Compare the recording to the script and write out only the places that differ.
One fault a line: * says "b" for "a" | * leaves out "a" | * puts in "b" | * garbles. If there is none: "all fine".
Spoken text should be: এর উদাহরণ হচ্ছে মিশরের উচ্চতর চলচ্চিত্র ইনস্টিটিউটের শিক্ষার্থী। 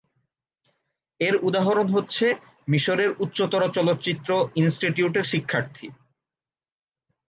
all fine